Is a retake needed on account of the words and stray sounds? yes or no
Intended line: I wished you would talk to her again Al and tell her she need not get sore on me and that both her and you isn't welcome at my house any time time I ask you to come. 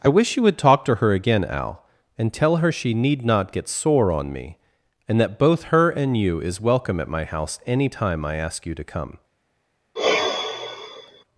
yes